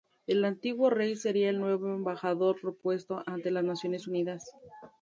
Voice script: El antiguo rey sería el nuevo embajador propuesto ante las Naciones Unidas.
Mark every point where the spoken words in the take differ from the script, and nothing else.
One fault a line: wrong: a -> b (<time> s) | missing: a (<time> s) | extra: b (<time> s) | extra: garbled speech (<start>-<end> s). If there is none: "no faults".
no faults